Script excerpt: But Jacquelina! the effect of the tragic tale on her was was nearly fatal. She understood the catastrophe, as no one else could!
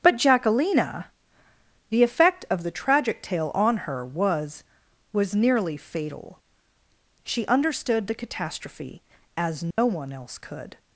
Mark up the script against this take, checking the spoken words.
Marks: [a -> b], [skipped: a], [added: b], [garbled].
But Jacquelina! the effect of the tragic tale on her was was nearly fatal. She understood the catastrophe, as no one else could!